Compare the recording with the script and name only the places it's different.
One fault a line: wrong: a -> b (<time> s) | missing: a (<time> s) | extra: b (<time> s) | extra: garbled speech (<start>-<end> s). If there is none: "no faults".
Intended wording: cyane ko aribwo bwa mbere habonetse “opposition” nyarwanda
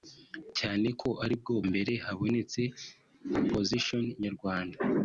missing: bwa (1.5 s)